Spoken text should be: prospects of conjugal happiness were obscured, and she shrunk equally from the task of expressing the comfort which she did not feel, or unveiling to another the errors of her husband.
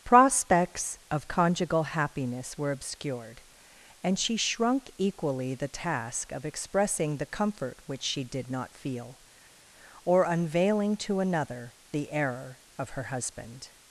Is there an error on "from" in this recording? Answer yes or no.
yes